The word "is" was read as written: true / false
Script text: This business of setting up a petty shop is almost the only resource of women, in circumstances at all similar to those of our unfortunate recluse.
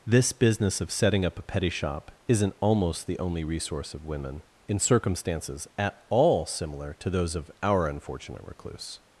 false